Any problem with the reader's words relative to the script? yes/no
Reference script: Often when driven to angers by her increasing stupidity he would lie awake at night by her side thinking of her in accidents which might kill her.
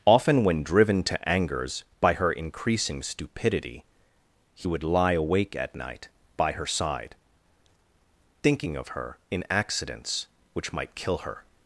no